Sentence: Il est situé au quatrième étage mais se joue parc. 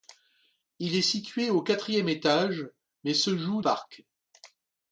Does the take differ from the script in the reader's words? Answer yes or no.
no